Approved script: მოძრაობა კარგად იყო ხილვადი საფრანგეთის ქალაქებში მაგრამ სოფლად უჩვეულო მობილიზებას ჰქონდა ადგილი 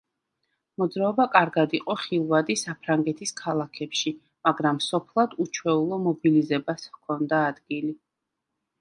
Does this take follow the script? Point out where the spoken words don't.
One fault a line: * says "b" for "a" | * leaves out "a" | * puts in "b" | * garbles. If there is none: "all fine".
all fine